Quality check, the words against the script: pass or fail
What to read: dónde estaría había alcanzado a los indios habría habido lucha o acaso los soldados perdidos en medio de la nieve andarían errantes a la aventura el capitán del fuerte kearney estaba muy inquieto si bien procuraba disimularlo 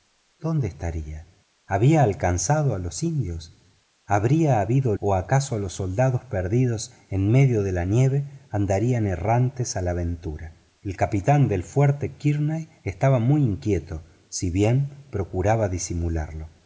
fail